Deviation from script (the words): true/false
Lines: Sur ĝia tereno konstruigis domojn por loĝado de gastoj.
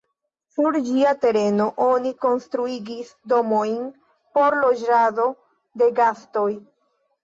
true